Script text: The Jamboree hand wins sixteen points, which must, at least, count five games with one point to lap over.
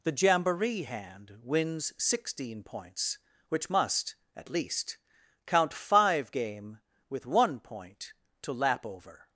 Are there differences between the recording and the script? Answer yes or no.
yes